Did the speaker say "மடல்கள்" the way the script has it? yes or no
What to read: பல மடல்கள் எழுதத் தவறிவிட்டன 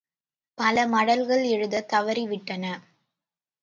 yes